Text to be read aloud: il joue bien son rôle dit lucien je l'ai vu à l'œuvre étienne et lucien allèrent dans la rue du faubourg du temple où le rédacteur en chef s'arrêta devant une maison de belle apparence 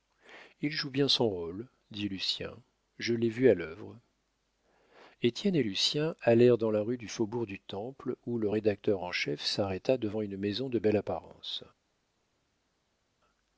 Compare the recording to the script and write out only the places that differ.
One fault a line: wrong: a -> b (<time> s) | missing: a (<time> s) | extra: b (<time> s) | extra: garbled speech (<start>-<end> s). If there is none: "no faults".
no faults